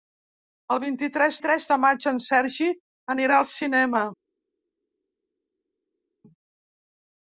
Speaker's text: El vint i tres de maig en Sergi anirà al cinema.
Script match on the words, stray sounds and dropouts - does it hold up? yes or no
no